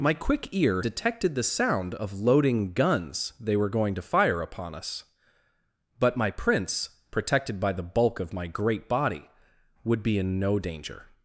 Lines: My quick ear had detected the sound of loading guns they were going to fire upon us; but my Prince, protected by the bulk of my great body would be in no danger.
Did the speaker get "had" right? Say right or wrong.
wrong